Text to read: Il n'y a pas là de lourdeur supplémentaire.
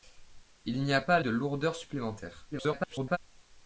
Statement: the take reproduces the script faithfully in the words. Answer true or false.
false